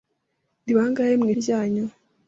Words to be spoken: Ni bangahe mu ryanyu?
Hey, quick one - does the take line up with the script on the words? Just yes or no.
yes